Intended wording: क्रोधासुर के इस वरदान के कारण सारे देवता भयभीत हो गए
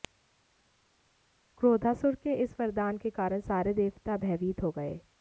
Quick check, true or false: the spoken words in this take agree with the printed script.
true